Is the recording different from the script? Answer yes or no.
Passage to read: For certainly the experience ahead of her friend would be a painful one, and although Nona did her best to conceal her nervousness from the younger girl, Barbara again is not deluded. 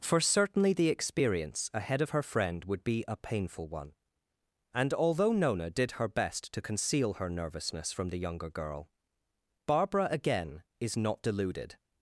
no